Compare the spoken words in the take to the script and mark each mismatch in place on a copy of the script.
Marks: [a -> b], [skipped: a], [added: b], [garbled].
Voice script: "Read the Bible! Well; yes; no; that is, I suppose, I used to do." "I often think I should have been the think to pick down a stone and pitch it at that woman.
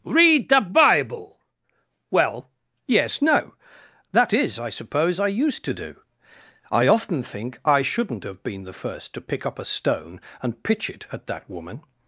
"Read the Bible! Well; yes; no; that is, I suppose, I used to do." "I often think I [should -> shouldn't] have been the [think -> first] to pick [down -> up] a stone and pitch it at that woman.